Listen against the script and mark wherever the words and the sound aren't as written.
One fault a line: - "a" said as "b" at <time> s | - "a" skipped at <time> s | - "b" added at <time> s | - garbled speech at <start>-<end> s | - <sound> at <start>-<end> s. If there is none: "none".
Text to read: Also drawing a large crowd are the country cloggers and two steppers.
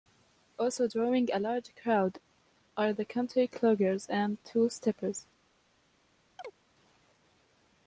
- chirp at 6.4-6.6 s